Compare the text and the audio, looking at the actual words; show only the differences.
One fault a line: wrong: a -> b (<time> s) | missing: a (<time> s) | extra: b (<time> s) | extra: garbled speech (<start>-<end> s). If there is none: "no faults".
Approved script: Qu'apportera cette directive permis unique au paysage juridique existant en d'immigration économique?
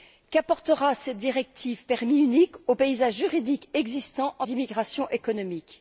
no faults